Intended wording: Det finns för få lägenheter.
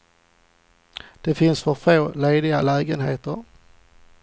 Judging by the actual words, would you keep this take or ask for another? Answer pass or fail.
fail